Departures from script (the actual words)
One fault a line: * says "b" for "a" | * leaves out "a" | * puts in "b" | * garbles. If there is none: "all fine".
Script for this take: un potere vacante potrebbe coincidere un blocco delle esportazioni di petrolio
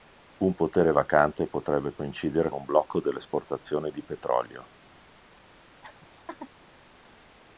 all fine